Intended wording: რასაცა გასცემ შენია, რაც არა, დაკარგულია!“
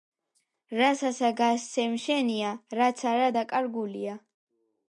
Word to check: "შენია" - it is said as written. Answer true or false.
true